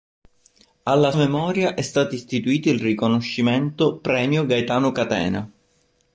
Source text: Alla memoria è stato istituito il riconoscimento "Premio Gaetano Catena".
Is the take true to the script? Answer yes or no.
yes